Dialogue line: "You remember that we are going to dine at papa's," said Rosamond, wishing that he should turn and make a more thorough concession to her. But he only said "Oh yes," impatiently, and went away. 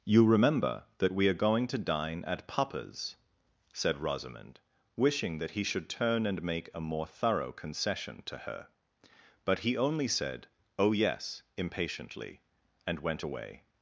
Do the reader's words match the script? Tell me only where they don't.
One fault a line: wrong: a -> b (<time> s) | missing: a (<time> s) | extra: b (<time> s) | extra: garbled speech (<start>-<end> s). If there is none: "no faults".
no faults